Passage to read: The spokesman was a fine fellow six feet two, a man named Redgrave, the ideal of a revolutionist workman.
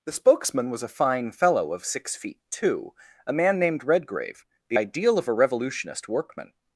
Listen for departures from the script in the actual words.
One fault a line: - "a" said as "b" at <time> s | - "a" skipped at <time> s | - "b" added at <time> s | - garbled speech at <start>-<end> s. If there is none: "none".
- "of" added at 1.7 s